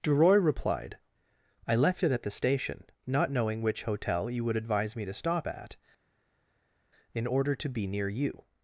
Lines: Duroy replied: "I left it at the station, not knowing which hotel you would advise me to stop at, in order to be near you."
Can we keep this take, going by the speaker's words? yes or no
yes